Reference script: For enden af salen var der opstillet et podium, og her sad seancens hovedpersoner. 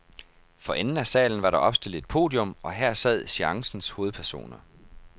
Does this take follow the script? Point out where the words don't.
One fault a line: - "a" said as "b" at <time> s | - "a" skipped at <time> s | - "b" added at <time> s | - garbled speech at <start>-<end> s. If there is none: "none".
none